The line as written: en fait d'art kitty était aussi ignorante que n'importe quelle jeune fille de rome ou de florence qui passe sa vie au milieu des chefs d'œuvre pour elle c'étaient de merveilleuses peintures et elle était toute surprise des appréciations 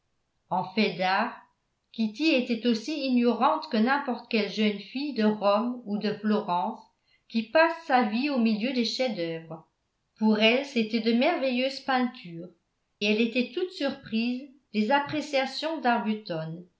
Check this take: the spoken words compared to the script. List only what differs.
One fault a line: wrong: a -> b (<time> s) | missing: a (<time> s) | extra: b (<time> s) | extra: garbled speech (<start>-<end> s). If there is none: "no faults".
missing: et (12.5 s)